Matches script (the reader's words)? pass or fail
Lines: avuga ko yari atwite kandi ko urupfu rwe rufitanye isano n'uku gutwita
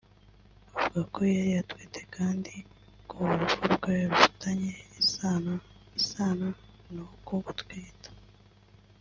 fail